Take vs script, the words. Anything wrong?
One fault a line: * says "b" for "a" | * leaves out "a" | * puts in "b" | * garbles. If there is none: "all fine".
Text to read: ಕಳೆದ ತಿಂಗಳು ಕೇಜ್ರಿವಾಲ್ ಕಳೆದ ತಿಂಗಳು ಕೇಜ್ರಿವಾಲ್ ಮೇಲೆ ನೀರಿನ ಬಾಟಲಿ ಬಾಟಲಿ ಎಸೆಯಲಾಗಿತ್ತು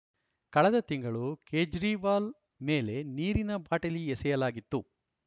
* leaves out "ಕಳೆದ ತಿಂಗಳು ಕೇಜ್ರಿವಾಲ್"
* leaves out "ಬಾಟಲಿ"